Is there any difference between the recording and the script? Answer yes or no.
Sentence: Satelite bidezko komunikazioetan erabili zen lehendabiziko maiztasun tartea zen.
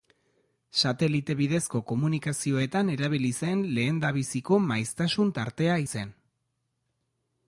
no